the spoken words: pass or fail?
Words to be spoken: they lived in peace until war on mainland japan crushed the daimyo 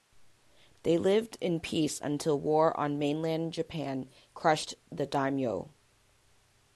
pass